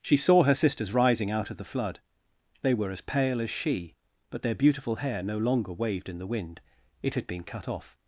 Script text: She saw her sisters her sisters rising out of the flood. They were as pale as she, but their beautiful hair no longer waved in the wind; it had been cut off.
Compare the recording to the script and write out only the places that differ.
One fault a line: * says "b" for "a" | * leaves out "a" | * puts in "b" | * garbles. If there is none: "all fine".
* leaves out "her sisters"